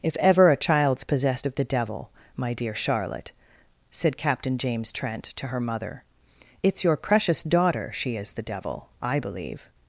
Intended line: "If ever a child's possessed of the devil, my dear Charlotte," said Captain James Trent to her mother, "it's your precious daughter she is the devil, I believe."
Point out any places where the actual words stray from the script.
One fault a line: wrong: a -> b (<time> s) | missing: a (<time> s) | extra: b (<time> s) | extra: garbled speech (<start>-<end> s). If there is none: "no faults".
no faults